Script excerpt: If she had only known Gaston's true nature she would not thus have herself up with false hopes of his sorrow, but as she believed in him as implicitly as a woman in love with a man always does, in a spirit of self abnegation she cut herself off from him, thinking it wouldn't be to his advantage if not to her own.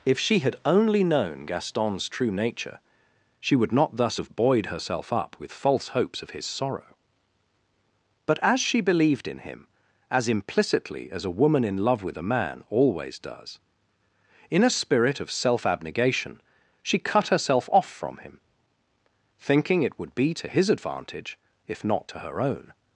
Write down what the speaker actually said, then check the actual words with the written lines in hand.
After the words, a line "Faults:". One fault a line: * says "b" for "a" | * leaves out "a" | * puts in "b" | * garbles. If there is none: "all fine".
If she had only known Gaston's true nature she would not thus have buoyed herself up with false hopes of his sorrow, but as she believed in him as implicitly as a woman in love with a man always does, in a spirit of self abnegation she cut herself off from him, thinking it would be to his advantage if not to her own.
Faults:
* puts in "buoyed"
* says "would" for "wouldn't"